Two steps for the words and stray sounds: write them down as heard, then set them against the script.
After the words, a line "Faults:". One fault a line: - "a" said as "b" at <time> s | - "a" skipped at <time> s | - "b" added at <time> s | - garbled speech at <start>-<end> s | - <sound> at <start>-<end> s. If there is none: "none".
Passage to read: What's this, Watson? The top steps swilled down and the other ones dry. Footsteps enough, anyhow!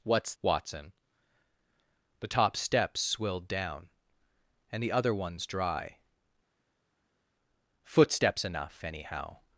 What's Watson? The top steps swilled down and the other ones dry. Footsteps enough, anyhow!
Faults:
- "this" skipped at 0.3 s